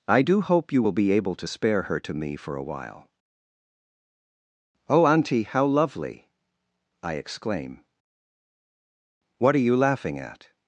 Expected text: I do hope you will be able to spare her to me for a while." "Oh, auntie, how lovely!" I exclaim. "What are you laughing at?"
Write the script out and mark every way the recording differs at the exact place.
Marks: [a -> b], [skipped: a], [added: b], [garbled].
I do hope you will be able to spare her to me for a while." "Oh, auntie, how lovely!" I exclaim. "What are you laughing at?"